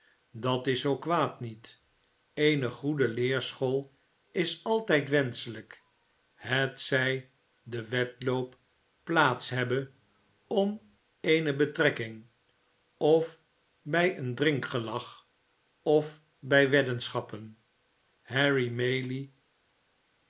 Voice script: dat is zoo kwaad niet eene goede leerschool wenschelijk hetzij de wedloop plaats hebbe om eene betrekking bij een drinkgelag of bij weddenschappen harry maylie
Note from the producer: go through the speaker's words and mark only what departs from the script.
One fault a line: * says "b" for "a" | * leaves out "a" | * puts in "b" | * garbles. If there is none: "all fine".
* puts in "is altijd"
* puts in "of"